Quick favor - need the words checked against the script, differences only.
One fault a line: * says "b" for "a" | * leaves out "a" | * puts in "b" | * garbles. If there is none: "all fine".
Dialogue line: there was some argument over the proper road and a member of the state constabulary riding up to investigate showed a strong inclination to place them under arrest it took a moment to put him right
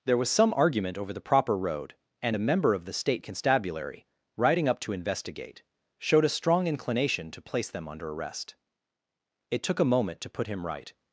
all fine